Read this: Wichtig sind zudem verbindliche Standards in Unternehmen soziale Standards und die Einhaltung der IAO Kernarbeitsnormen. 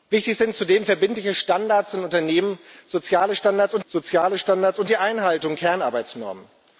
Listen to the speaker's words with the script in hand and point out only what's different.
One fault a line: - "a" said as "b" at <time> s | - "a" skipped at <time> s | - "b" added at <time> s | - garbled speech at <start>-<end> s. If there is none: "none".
- "soziale Standards und" added at 3.9 s
- "der IAO" skipped at 5.6 s